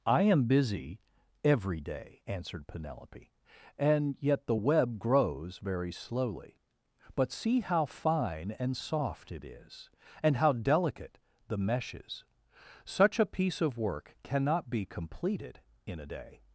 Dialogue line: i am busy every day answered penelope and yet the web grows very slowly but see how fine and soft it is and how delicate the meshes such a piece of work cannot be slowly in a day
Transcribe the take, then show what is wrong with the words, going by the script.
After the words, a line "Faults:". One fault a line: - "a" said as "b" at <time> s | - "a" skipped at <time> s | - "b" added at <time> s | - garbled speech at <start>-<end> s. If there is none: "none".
i am busy every day answered penelope and yet the web grows very slowly but see how fine and soft it is and how delicate the meshes such a piece of work cannot be completed in a day
Faults:
- "slowly" said as "completed" at 14.8 s